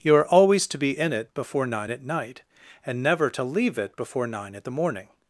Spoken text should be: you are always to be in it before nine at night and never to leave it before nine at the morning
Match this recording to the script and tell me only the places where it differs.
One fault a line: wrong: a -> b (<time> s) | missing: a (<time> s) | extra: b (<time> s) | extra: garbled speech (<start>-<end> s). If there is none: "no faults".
no faults